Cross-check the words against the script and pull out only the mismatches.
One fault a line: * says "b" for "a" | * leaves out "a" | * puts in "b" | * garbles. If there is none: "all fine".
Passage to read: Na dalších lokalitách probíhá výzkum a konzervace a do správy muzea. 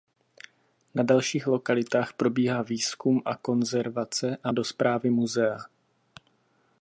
all fine